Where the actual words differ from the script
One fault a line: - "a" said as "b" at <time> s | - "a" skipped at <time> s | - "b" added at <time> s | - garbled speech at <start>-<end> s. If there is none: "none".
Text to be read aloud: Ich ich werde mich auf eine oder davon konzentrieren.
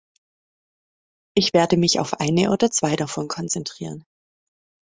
- "ich" skipped at 1.5 s
- "zwei" added at 2.7 s